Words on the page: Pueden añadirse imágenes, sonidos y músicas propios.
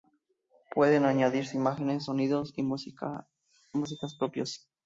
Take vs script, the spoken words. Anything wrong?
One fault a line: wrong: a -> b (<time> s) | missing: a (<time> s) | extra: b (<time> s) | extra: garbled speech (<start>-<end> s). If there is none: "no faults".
no faults